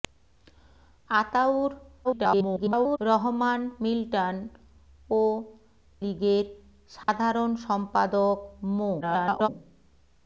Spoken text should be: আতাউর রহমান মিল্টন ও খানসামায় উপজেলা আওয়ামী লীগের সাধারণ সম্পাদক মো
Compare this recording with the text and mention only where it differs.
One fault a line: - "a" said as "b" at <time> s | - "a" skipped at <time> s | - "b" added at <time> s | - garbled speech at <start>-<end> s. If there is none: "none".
- garbled speech at 2.0-3.0 s
- "খানসামায় উপজেলা আওয়ামী" skipped at 5.2 s
- garbled speech at 9.0-9.5 s